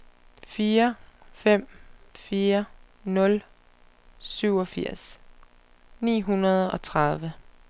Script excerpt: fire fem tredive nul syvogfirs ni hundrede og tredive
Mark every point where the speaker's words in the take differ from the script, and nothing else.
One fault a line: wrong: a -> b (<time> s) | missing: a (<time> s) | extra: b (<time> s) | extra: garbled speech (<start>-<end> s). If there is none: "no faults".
wrong: tredive -> fire (2.1 s)